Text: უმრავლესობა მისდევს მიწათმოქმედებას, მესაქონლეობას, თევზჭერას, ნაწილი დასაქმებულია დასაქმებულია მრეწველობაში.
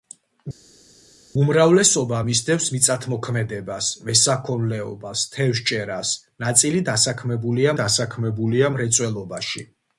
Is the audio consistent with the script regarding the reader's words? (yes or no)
yes